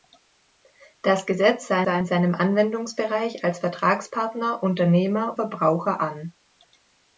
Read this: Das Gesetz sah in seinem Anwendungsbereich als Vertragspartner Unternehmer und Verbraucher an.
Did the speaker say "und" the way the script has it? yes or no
no